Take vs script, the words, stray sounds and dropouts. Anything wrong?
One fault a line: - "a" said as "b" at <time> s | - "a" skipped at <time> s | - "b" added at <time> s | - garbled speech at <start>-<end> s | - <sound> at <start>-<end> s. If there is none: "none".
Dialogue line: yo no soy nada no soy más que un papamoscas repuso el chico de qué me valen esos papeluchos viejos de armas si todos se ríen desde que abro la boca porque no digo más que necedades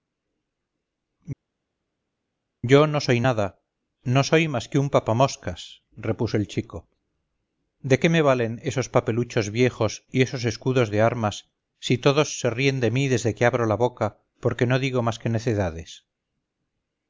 - "y esos escudos" added at 10.1 s
- "de mí" added at 12.8 s